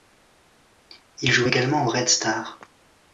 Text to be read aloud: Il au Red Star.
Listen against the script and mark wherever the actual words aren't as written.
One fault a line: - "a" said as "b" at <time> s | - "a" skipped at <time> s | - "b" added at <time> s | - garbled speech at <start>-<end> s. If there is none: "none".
- "joue également" added at 1.3 s